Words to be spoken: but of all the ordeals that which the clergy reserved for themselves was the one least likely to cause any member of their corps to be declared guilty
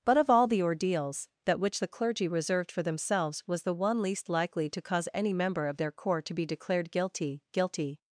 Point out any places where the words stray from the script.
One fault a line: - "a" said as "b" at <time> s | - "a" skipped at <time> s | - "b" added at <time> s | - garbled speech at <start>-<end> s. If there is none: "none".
- "guilty" added at 7.5 s